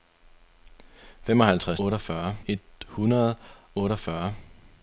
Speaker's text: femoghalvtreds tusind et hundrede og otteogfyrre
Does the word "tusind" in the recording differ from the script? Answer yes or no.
yes